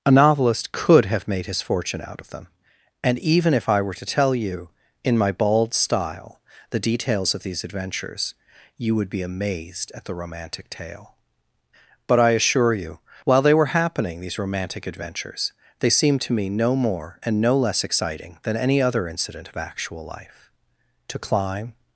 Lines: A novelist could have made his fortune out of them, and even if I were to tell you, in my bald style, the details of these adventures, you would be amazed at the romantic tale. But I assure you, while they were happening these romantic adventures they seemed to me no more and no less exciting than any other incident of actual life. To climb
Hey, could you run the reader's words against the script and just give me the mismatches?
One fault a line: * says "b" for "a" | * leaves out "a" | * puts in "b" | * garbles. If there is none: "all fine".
all fine